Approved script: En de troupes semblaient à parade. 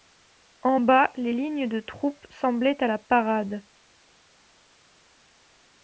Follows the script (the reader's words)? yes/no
no